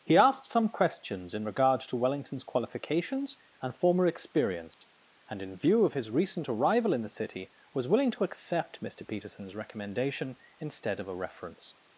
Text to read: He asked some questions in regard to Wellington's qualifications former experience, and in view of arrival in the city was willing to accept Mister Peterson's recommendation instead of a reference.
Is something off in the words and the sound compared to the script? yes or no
yes